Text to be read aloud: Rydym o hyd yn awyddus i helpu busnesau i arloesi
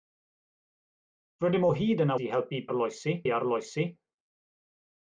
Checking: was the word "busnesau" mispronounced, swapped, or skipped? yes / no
yes